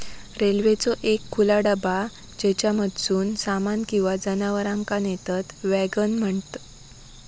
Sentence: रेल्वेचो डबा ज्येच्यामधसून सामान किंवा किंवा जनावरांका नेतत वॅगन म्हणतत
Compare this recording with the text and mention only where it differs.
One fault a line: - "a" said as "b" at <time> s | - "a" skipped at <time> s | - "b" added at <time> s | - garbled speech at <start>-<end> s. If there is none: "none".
- "एक खुला" added at 1.0 s
- "किंवा" skipped at 4.1 s